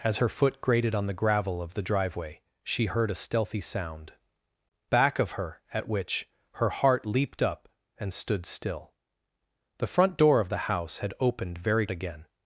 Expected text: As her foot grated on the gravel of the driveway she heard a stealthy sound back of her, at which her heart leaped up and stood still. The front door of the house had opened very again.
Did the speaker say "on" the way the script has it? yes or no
yes